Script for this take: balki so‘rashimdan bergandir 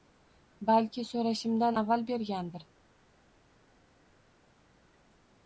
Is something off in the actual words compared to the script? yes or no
yes